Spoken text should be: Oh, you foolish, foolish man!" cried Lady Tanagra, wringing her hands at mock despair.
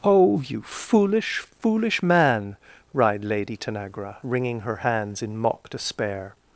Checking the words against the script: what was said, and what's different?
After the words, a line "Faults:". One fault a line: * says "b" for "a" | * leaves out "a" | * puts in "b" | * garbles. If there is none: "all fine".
Oh, you foolish, foolish man!" cried Lady Tanagra, wringing her hands in mock despair.
Faults:
* says "in" for "at"